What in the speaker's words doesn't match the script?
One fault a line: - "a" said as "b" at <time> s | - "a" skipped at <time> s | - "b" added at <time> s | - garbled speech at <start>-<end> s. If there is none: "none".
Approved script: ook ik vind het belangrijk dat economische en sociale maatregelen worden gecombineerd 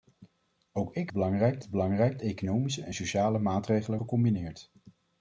- "vind" said as "belangrijk" at 1.1 s
- "dat" skipped at 2.2 s
- "worden" skipped at 4.0 s